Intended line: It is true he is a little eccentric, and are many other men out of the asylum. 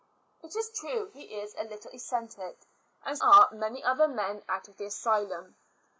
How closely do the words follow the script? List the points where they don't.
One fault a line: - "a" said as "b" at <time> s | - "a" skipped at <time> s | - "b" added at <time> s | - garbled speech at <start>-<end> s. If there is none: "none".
none